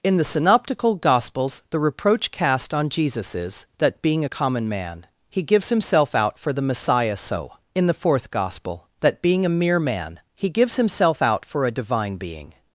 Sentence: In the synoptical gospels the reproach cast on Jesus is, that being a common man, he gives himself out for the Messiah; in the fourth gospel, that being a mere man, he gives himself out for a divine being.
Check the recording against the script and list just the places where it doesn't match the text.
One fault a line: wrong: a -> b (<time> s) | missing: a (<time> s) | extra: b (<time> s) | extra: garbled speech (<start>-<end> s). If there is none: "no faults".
extra: so (7.2 s)